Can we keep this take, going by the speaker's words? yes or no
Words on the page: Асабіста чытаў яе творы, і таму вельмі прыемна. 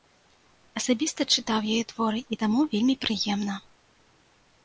yes